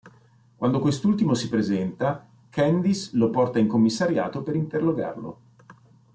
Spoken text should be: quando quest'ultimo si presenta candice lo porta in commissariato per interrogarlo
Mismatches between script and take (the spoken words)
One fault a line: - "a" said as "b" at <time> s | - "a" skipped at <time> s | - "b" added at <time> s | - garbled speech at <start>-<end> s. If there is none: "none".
none